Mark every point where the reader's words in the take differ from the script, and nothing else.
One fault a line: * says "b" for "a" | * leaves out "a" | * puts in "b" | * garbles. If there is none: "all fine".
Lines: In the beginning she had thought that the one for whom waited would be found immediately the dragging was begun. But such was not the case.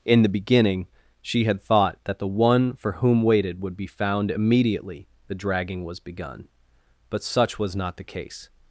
all fine